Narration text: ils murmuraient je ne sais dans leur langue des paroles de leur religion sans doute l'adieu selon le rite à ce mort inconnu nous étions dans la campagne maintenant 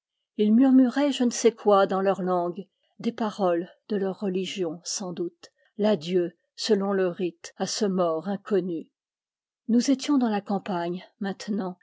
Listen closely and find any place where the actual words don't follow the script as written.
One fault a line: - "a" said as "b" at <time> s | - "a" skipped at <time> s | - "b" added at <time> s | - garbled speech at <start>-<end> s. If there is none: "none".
- "quoi" added at 1.5 s